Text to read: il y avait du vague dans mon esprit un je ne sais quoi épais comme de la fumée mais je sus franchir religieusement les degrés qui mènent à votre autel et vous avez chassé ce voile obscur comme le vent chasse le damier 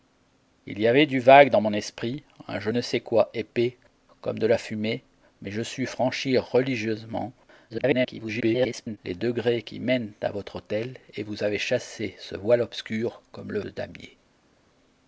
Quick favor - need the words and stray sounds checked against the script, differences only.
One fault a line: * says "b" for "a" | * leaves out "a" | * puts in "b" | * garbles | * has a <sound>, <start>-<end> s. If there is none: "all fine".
* garbles
* leaves out "vent chasse"